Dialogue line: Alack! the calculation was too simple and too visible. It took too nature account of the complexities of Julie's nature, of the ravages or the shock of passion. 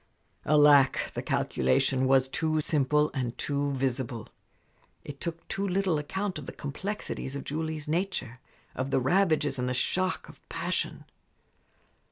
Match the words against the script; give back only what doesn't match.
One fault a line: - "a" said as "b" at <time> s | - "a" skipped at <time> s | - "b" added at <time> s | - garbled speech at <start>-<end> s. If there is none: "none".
- "nature" said as "little" at 5.7 s
- "or" said as "and" at 9.6 s